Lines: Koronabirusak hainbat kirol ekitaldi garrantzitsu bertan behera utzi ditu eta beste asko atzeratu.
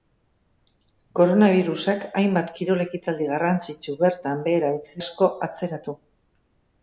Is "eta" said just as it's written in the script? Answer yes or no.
no